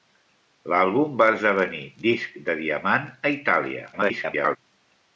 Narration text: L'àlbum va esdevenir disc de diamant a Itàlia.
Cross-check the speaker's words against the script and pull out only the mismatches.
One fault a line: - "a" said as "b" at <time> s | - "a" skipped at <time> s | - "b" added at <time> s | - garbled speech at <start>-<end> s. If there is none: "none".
- garbled speech at 3.9-4.6 s